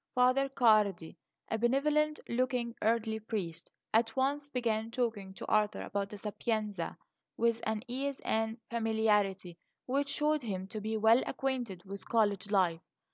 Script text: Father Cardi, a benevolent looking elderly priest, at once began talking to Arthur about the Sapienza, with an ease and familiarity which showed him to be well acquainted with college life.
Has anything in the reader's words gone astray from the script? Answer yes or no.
no